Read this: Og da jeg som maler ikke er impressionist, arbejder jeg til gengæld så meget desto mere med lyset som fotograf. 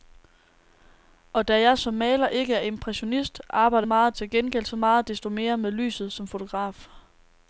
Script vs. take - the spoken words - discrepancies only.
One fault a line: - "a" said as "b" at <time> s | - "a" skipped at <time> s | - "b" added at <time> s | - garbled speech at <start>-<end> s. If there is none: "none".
- "jeg" said as "meget" at 3.8 s